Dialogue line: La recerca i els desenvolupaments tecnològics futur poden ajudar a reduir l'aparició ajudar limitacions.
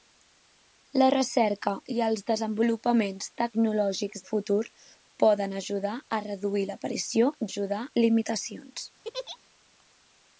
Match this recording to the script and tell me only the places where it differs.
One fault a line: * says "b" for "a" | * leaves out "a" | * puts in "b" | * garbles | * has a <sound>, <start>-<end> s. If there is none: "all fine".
* has a laugh, 9.0-9.4 s